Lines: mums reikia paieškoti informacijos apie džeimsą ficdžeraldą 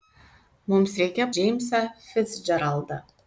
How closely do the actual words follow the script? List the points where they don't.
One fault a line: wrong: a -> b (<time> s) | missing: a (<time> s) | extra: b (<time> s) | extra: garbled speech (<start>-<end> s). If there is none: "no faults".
missing: paieškoti informacijos apie (1.2 s)